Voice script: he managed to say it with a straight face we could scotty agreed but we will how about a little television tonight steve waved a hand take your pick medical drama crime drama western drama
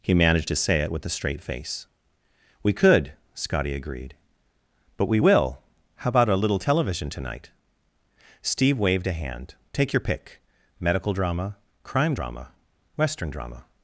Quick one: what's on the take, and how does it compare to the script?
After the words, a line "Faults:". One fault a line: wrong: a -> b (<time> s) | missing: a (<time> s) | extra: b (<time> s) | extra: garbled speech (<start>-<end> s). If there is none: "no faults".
he managed to say it with a straight face we could scotty agreed but we will how about a little television tonight steve waved a hand take your pick medical drama crime drama western drama
Faults:
no faults